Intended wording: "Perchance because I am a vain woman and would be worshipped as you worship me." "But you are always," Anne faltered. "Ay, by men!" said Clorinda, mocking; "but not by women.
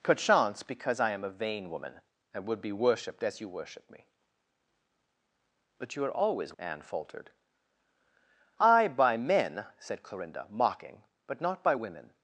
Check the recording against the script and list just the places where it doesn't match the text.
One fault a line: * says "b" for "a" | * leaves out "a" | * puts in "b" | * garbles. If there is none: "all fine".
all fine